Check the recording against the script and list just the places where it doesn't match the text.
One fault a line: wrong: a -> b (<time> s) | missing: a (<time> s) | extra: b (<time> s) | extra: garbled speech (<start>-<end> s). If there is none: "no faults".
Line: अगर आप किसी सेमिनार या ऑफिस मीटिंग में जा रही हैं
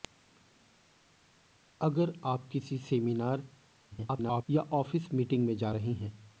extra: garbled speech (3.9-4.4 s)